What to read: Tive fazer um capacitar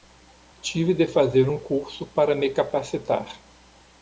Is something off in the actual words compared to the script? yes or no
yes